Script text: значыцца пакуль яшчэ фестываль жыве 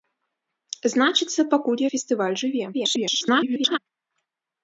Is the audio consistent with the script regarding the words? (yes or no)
no